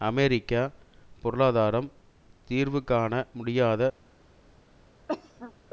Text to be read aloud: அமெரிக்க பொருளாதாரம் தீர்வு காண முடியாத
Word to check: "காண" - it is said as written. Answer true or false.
true